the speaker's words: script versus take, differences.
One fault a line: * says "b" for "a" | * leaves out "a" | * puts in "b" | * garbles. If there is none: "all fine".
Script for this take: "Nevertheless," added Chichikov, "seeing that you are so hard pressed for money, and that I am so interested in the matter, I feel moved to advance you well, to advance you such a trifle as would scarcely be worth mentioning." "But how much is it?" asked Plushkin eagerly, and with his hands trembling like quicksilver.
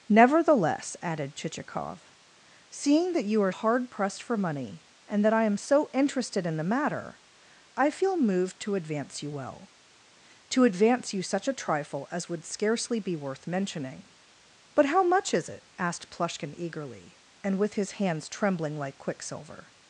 * leaves out "so"